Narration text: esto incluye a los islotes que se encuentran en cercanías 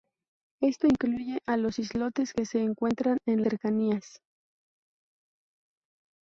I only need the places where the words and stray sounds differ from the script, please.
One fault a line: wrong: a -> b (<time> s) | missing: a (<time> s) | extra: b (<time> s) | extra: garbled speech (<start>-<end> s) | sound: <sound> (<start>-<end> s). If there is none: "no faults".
no faults